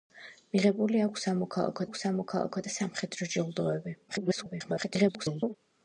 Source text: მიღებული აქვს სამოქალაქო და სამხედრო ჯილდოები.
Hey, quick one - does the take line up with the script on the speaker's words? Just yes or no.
no